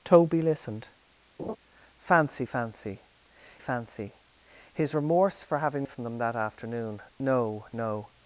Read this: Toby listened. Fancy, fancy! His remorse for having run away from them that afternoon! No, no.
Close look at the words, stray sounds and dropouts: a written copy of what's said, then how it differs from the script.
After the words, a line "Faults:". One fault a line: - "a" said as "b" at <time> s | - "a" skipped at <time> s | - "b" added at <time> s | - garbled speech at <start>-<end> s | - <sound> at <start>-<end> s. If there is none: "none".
Toby listened. Fancy, fancy fancy! His remorse for having from them that afternoon! No, no.
Faults:
- laugh at 1.4-1.6 s
- "fancy" added at 3.6 s
- "run away" skipped at 5.9 s